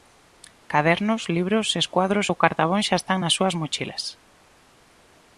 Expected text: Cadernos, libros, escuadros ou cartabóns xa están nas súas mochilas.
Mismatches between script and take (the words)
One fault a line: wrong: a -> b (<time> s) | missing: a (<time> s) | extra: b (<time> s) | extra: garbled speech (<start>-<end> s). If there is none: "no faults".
no faults